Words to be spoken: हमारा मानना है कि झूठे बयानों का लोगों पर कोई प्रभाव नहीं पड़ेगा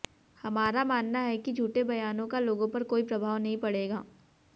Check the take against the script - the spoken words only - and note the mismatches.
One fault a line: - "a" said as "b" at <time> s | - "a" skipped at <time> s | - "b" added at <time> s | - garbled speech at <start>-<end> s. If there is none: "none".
none